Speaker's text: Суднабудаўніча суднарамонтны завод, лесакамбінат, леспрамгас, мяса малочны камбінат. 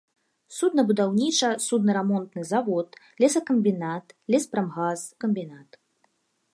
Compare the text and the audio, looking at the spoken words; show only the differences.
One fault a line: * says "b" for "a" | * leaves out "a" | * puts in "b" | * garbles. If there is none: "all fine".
* leaves out "мяса малочны"